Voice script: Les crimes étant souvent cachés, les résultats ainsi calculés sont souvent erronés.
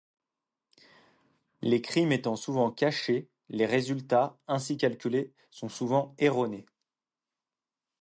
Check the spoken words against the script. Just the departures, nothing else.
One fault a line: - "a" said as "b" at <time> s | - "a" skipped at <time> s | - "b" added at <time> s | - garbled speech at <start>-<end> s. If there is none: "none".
none